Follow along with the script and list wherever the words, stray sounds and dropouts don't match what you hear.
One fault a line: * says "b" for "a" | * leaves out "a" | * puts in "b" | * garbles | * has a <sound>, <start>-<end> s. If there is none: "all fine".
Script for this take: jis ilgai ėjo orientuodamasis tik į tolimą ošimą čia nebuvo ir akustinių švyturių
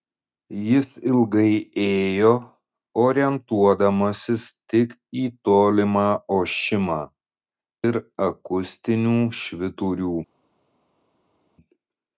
* leaves out "čia nebuvo"